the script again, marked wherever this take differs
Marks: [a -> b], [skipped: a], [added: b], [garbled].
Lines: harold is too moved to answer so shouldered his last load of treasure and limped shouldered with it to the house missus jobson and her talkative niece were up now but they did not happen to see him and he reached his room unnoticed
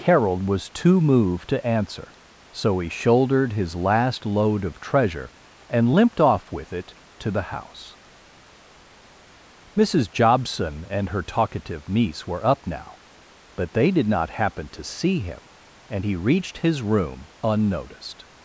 harold [is -> was] too moved to answer so [added: he] shouldered his last load of treasure and limped [shouldered -> off] with it to the house missus jobson and her talkative niece were up now but they did not happen to see him and he reached his room unnoticed